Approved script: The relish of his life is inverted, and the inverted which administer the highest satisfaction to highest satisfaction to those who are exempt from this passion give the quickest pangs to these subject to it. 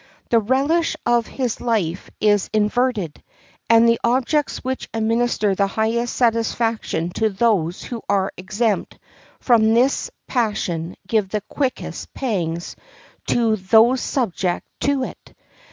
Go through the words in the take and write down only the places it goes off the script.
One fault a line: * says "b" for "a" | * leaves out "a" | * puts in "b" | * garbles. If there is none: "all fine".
* says "objects" for "inverted"
* leaves out "highest satisfaction to"
* says "those" for "these"